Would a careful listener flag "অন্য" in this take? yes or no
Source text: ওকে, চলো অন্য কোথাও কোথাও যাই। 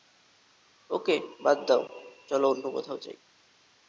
no